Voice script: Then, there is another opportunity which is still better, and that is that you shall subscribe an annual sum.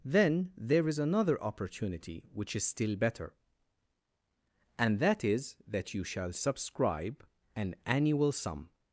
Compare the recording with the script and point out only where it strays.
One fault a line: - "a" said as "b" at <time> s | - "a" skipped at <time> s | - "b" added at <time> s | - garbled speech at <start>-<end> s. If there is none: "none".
none